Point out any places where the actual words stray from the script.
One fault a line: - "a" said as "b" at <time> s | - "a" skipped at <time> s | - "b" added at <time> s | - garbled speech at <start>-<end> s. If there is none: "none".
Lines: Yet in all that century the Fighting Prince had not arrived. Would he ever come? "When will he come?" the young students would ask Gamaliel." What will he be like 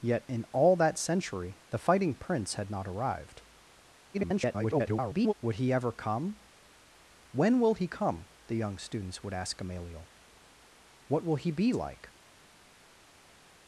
- garbled speech at 4.1-5.3 s